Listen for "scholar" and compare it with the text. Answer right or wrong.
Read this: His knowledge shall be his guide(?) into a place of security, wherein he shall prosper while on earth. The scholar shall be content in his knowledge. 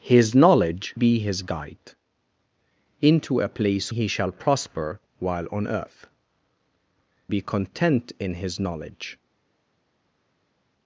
wrong